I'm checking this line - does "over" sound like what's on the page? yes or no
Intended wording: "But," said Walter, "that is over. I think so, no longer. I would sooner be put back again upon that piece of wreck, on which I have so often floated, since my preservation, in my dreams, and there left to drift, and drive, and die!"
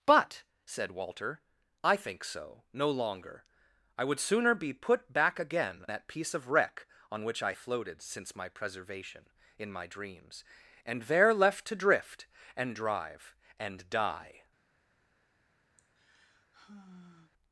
no